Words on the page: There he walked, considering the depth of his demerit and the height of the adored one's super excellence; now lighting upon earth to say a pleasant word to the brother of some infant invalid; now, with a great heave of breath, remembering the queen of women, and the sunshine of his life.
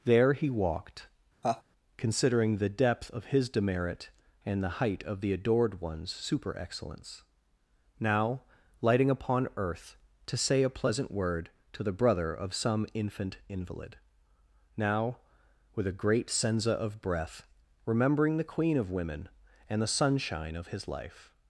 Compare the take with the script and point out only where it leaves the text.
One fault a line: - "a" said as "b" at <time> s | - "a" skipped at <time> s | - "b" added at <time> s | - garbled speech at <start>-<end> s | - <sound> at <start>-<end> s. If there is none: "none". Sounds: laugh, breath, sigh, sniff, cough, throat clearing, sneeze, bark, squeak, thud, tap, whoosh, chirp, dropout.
- laugh at 1.4-1.6 s
- "heave" said as "senza" at 16.3 s